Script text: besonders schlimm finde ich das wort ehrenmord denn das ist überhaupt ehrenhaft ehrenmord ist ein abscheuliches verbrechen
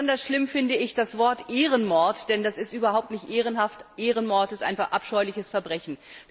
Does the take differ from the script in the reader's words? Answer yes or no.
yes